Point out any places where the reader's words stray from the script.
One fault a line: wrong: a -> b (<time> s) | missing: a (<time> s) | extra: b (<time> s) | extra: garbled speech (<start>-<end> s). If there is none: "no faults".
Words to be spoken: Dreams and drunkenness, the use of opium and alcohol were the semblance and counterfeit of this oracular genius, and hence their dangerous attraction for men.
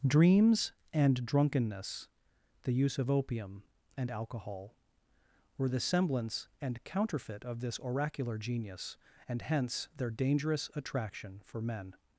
no faults